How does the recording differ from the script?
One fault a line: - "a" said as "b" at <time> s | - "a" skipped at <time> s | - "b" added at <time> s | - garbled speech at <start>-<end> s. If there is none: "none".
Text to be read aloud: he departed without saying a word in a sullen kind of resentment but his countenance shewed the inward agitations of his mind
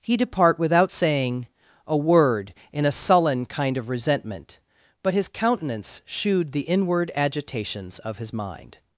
- "departed" said as "depart" at 0.2 s